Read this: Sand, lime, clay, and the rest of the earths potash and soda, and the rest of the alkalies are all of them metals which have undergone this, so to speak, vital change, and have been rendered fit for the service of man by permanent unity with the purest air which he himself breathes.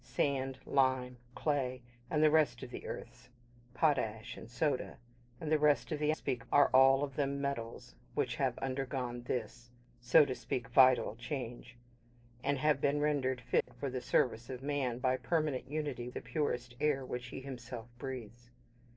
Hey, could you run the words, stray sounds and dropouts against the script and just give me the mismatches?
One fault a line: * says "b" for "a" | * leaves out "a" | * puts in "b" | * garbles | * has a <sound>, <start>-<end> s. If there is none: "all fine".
* says "speak" for "alkalies"
* has a dropout, 13.6-13.7 s
* leaves out "with"